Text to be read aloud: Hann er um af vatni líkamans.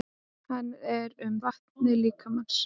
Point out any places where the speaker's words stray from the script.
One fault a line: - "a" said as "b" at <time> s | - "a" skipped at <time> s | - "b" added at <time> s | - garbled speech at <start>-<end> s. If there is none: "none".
none